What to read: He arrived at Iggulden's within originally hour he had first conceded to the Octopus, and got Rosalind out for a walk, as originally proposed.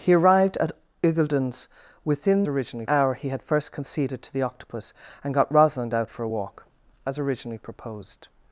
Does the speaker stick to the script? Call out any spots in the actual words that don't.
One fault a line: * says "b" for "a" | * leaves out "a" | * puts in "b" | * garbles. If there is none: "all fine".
all fine